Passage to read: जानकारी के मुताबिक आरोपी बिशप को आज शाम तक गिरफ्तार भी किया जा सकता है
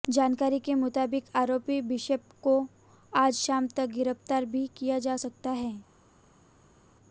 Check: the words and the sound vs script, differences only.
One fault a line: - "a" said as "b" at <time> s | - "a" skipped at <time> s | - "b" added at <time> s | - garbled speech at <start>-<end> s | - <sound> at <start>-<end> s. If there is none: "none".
none